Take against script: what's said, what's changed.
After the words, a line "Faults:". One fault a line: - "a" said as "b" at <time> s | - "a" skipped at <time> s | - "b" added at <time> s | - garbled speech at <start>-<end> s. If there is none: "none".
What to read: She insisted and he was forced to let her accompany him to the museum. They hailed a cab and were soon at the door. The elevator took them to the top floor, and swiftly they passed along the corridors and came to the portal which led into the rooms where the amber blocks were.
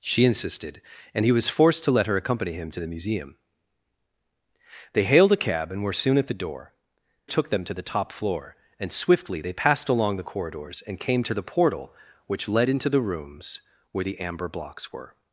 She insisted and he was forced to let her accompany him to the museum. They hailed a cab and were soon at the door. Took them to the top floor, and swiftly they passed along the corridors and came to the portal which led into the rooms where the amber blocks were.
Faults:
- "The elevator" skipped at 6.7 s